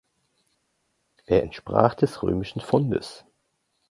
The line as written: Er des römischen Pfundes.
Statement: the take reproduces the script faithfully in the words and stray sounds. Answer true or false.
false